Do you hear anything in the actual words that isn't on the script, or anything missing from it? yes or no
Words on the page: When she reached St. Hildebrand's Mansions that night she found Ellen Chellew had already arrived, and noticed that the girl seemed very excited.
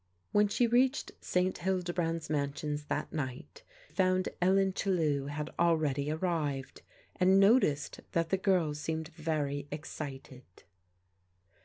yes